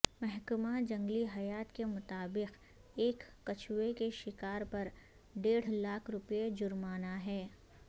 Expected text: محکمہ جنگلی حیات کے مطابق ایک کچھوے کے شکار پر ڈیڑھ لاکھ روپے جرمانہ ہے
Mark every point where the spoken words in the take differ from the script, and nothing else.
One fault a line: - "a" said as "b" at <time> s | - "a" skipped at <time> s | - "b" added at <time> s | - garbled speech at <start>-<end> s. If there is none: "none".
none